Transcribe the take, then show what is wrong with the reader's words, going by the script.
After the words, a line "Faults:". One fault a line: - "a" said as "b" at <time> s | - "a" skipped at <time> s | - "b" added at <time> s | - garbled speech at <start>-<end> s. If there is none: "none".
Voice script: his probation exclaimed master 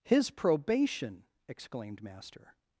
his probation exclaimed master
Faults:
none